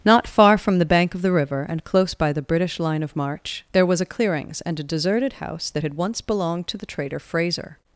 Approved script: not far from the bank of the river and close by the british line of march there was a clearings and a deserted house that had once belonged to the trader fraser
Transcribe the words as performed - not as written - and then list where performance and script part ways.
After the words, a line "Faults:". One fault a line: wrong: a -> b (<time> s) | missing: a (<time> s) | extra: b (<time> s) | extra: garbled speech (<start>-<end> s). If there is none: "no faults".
not far from the bank of the river and close by the british line of march there was a clearings and a deserted house that had once belonged to the trader fraser
Faults:
no faults